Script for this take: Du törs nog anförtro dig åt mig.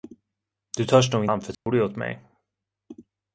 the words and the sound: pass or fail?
fail